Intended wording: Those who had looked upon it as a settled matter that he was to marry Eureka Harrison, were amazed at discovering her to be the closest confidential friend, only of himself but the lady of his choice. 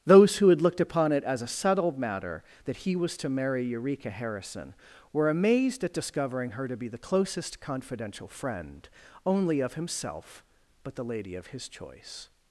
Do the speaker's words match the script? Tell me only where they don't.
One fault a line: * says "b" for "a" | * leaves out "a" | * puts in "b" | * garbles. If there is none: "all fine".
all fine